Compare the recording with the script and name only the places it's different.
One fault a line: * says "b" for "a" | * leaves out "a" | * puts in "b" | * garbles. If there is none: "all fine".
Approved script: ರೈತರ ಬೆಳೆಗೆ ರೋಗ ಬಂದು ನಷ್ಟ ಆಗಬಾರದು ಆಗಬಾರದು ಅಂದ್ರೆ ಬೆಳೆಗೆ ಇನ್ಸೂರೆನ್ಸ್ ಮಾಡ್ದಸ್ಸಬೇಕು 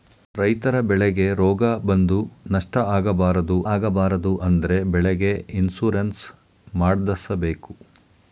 all fine